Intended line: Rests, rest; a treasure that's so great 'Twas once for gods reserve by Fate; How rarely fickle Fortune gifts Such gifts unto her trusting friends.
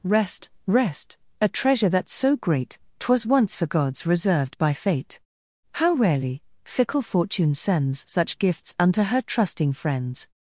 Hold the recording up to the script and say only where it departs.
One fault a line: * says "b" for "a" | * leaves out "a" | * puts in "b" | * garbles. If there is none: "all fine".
* says "Rest" for "Rests"
* says "reserved" for "reserve"
* says "sends" for "gifts"